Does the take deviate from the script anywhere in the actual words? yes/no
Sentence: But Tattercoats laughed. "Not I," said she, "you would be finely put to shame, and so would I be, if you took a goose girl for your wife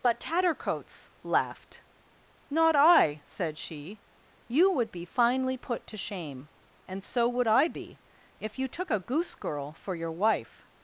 no